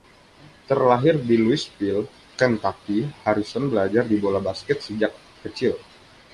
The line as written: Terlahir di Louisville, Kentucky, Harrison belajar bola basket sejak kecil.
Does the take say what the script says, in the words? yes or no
yes